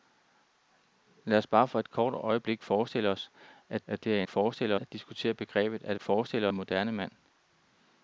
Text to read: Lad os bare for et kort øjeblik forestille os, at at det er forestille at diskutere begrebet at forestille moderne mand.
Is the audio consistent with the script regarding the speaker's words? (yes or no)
yes